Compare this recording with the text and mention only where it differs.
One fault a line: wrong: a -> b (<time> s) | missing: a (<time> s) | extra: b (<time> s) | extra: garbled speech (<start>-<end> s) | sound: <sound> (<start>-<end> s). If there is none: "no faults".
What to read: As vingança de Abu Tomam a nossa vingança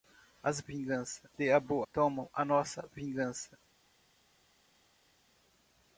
no faults